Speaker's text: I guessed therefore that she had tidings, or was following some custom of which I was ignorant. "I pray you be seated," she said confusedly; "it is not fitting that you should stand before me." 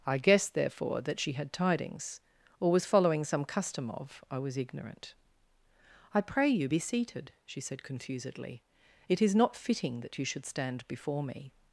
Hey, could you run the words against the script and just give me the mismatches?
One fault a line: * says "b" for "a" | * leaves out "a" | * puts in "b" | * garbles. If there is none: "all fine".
* leaves out "which"